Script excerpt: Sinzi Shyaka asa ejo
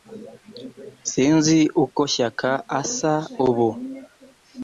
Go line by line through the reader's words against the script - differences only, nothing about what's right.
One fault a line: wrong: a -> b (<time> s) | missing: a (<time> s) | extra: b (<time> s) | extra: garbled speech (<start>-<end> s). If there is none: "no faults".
extra: uko (1.8 s)
wrong: ejo -> ubu (3.5 s)